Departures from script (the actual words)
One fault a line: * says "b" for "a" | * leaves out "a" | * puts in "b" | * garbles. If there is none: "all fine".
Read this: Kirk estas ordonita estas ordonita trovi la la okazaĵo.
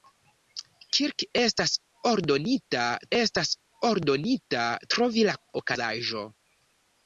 all fine